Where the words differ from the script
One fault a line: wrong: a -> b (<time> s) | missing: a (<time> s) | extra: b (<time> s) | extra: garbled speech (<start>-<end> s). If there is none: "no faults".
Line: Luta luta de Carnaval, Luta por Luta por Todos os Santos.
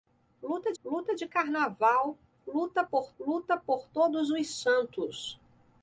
no faults